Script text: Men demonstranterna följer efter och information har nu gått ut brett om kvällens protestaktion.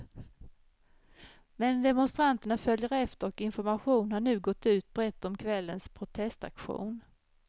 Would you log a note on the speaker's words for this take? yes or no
no